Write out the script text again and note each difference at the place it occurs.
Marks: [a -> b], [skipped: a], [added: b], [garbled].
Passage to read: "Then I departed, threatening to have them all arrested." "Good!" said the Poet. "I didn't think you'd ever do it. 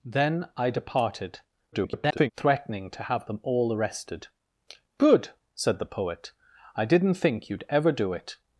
"Then I departed, [garbled] threatening to have them all arrested." "Good!" said the Poet. "I didn't think you'd ever do it.